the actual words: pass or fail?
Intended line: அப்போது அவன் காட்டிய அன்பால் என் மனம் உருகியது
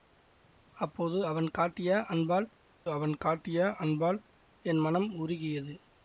fail